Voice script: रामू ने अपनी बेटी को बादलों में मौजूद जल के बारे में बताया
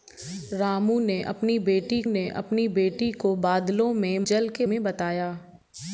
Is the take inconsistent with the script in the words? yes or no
yes